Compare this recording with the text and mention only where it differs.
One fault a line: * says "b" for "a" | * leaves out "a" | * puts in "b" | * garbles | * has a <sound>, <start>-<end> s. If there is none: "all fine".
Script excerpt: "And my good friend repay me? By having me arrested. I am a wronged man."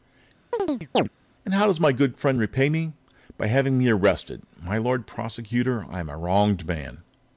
* has a chirp, 0.5-1.1 s
* puts in "how does"
* puts in "My Lord Prosecutor"